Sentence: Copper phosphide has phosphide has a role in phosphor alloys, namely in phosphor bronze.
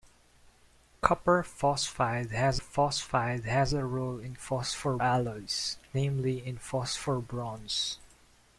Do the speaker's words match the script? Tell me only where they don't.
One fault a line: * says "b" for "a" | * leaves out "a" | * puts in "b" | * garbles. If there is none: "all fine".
all fine